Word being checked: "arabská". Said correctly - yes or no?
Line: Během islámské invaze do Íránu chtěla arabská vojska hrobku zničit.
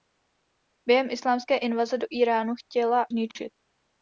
no